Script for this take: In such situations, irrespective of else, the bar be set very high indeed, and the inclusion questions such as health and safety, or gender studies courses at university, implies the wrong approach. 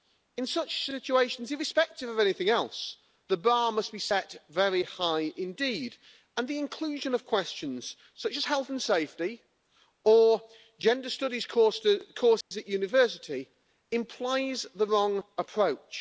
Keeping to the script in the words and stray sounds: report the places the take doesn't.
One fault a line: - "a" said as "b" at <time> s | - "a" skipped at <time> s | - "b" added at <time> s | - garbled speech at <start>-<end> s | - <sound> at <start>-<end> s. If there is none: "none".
- "anything" added at 2.2 s
- "must" added at 3.7 s
- "of" added at 7.1 s
- dropout at 12.4-12.5 s